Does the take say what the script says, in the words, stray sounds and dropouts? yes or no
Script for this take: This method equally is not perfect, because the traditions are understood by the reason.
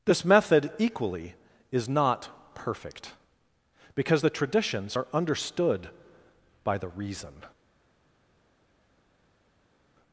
yes